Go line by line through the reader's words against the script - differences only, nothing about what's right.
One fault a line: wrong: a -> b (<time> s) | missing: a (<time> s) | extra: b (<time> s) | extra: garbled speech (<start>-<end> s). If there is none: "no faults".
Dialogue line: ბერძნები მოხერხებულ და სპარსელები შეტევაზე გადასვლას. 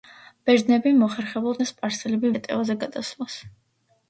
no faults